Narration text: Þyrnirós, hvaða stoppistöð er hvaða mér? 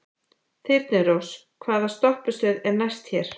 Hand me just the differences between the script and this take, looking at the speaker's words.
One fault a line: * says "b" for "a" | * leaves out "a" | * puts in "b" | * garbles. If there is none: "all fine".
* says "næst" for "hvaða"